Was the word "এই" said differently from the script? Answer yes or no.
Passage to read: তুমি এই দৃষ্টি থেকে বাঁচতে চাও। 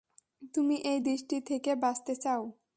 no